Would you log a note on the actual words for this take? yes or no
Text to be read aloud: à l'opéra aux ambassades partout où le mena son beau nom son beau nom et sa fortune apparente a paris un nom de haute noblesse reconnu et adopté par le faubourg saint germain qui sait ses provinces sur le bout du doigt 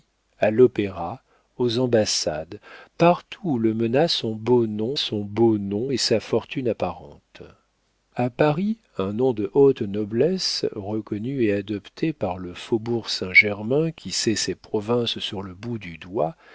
no